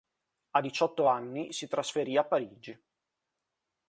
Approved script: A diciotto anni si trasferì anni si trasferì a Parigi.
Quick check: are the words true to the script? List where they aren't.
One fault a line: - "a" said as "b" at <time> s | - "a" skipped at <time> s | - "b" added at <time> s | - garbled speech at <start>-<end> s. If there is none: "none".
- "anni si trasferì" skipped at 2.2 s